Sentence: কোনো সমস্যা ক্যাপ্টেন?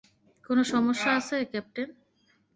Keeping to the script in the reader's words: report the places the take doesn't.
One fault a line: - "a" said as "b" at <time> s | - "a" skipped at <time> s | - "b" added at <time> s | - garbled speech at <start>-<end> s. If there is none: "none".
- "আছে" added at 1.2 s